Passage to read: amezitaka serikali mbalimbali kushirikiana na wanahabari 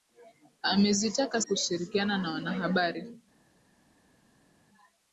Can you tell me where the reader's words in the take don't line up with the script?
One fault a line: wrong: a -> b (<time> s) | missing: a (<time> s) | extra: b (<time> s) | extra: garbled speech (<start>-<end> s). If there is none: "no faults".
missing: serikali mbalimbali (1.4 s)